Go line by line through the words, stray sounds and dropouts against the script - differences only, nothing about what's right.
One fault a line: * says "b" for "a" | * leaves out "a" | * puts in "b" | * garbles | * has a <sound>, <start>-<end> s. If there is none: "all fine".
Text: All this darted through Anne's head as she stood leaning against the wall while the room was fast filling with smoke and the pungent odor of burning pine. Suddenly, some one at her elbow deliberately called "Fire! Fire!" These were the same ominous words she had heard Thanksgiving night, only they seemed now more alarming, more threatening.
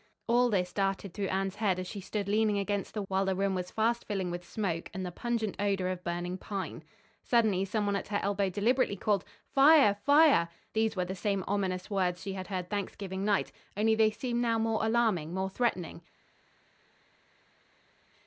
* leaves out "wall"